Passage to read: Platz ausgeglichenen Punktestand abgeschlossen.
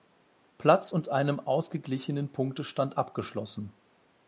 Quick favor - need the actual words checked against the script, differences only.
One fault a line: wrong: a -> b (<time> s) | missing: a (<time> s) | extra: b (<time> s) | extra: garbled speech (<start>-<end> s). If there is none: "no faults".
extra: und einem (0.9 s)